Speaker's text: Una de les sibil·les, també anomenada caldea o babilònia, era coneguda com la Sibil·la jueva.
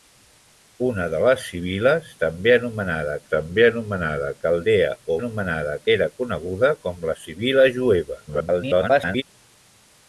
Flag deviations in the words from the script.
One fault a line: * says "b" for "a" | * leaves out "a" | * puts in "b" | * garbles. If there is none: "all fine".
* puts in "també anomenada"
* says "anomenada" for "babilònia"
* garbles